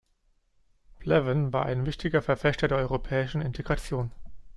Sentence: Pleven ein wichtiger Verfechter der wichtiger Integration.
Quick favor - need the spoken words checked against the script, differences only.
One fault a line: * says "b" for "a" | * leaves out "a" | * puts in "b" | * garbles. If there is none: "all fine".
* puts in "war"
* says "europäischen" for "wichtiger"